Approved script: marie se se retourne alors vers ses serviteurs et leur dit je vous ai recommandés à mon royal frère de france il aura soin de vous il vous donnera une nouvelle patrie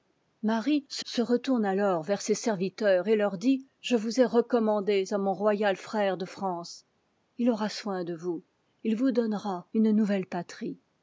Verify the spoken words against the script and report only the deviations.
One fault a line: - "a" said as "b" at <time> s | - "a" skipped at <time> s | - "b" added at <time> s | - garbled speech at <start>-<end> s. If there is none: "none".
none